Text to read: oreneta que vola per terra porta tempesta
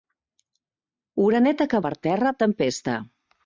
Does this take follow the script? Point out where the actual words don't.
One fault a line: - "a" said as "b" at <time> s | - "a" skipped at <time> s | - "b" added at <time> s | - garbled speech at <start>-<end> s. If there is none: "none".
- "vola" skipped at 1.8 s
- "porta" skipped at 2.3 s